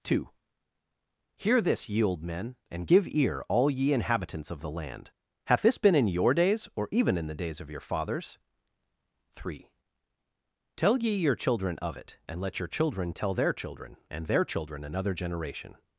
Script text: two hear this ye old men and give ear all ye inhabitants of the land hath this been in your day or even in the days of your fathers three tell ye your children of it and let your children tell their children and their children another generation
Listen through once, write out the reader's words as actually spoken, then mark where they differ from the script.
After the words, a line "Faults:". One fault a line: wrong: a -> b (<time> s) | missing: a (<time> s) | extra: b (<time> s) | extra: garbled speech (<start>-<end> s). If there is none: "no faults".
two hear this ye old men and give ear all ye inhabitants of the land hath this been in your days or even in the days of your fathers three tell ye your children of it and let your children tell their children and their children another generation
Faults:
wrong: day -> days (6.3 s)